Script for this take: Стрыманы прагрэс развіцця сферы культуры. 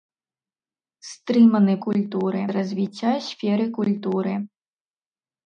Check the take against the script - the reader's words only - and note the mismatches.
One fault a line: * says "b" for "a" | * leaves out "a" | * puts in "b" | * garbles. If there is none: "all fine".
* says "культуры" for "прагрэс"